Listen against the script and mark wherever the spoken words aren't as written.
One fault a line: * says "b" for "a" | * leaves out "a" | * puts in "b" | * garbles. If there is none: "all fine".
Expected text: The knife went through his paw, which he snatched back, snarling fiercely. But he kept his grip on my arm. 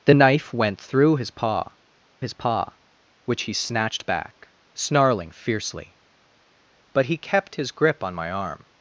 * puts in "his paw"